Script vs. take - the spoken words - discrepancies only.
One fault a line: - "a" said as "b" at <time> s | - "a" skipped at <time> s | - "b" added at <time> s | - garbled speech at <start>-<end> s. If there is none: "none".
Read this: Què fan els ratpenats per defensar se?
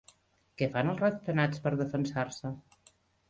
none